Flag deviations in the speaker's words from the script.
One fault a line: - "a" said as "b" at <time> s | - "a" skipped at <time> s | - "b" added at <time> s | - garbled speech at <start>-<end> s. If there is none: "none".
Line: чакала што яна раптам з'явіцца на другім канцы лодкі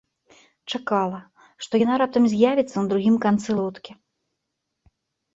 none